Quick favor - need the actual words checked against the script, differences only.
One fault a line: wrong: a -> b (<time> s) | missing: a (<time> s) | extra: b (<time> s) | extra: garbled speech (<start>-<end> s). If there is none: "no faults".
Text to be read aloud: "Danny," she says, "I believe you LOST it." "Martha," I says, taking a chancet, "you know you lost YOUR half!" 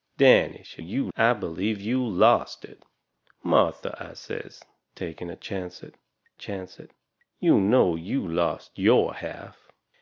wrong: says -> you (0.8 s)
extra: chancet (6.3 s)